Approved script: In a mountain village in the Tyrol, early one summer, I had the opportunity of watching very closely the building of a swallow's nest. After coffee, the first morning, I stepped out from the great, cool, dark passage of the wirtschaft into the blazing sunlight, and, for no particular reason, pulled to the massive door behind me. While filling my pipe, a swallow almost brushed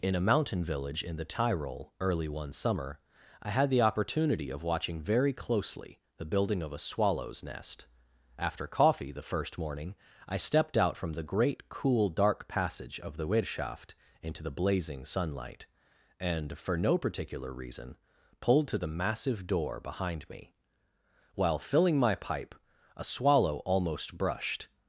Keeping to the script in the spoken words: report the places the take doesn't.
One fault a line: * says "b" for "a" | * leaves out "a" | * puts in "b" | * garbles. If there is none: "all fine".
all fine